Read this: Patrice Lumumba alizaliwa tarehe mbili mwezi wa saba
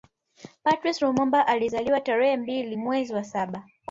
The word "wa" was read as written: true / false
true